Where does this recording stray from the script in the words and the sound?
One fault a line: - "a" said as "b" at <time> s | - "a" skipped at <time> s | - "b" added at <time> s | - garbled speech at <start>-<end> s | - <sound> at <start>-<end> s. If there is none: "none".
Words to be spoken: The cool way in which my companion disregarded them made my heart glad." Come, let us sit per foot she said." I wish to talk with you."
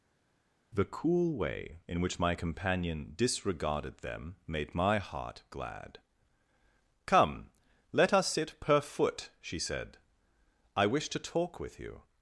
none